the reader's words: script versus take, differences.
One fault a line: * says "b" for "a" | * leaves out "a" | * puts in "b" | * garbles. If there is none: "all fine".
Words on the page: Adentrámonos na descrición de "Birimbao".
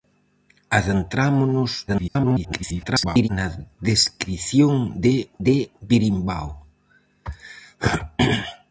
* garbles
* puts in "de"